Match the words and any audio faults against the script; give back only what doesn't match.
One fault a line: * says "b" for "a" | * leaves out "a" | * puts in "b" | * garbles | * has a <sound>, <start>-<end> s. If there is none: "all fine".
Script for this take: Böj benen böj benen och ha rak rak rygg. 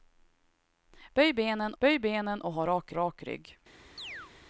* has a chirp, 4.0-4.3 s